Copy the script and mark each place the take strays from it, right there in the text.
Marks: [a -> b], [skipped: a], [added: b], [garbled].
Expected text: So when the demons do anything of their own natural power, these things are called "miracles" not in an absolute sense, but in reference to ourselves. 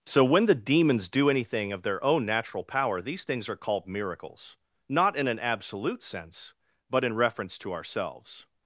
So when the demons do anything of their own natural power, these things are called "miracles" not in an absolute sense, but in reference to ourselves.